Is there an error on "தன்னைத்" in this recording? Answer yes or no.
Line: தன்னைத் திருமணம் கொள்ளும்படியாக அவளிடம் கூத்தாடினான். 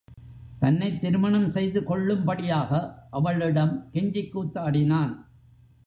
no